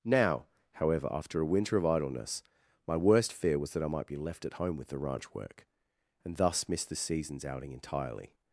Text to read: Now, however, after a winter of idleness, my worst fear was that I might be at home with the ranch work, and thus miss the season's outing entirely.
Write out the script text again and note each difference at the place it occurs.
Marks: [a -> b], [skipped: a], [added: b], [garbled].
Now, however, after a winter of idleness, my worst fear was that I might be [added: left] at home with the ranch work, and thus miss the season's outing entirely.